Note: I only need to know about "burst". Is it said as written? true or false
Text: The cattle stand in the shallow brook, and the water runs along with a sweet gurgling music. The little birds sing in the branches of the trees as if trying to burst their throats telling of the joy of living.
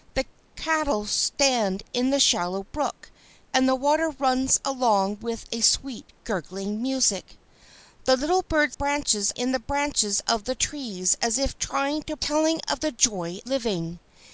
false